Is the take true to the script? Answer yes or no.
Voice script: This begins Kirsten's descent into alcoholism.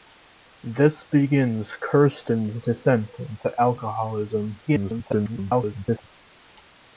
no